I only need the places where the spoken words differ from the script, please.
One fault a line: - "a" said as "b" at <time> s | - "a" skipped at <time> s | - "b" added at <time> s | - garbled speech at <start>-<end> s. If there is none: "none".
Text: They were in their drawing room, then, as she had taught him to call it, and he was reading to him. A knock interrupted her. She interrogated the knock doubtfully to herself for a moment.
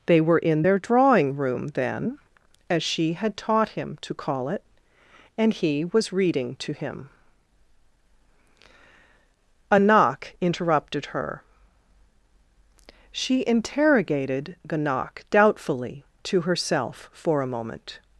none